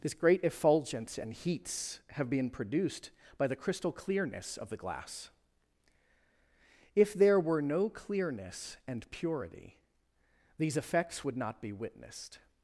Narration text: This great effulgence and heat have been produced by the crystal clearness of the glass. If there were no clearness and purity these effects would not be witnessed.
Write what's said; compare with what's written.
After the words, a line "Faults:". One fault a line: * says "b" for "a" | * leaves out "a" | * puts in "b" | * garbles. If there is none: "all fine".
This great effulgence and heats have been produced by the crystal clearness of the glass. If there were no clearness and purity these effects would not be witnessed.
Faults:
* says "heats" for "heat"